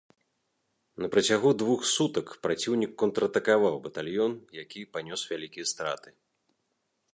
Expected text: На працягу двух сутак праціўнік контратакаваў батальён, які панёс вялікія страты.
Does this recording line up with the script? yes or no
yes